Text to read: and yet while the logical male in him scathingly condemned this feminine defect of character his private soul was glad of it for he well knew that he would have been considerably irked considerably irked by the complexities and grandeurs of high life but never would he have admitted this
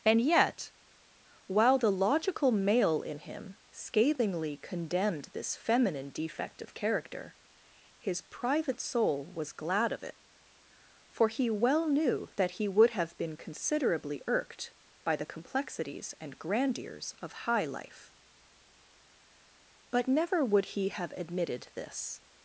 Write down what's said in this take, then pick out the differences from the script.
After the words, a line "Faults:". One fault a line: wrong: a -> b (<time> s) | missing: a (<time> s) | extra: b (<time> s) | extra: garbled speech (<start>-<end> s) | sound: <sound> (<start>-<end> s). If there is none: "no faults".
and yet while the logical male in him scathingly condemned this feminine defect of character his private soul was glad of it for he well knew that he would have been considerably irked by the complexities and grandeurs of high life but never would he have admitted this
Faults:
missing: considerably irked (14.7 s)